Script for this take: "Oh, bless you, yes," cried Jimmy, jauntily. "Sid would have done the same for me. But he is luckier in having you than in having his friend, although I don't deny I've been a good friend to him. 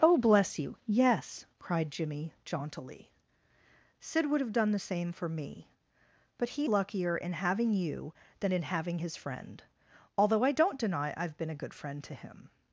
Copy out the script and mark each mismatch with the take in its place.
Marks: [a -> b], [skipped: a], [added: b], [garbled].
"Oh, bless you, yes," cried Jimmy, jauntily. "Sid would have done the same for me. But he [skipped: is] luckier in having you than in having his friend, although I don't deny I've been a good friend to him.